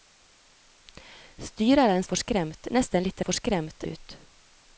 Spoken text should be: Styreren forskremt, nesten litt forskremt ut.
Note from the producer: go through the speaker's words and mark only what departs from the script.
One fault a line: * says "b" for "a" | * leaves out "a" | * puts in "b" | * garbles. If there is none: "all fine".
all fine